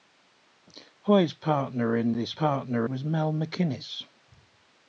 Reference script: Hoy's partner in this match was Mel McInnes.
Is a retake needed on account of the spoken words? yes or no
yes